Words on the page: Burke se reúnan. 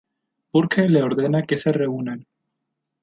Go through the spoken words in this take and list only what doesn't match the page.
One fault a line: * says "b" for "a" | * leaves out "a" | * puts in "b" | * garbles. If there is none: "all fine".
* puts in "le ordena que"